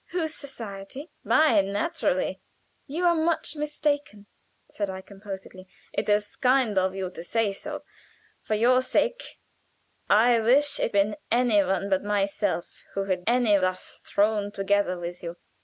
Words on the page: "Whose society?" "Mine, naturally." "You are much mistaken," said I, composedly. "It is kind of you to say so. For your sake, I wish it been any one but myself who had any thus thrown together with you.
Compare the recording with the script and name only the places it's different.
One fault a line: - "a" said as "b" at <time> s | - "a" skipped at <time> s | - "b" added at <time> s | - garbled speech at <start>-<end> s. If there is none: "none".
none